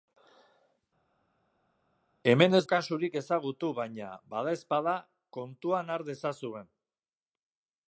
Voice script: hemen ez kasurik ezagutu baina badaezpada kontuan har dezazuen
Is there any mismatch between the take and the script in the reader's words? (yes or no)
no